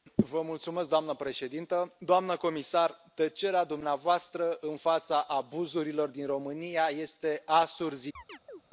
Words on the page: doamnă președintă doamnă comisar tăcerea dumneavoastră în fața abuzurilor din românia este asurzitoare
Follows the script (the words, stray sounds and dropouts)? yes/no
no